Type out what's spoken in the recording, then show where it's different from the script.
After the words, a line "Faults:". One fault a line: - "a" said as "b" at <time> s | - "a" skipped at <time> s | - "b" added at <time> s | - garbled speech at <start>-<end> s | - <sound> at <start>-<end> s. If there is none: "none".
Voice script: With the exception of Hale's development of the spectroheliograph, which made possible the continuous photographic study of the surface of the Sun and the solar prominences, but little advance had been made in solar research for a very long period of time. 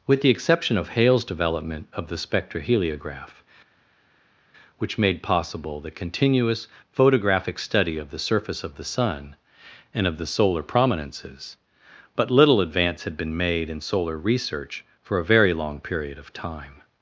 With the exception of Hale's development of the spectroheliograph, which made possible the continuous photographic study of the surface of the Sun and of the solar prominences, but little advance had been made in solar research for a very long period of time.
Faults:
- "of" added at 10.1 s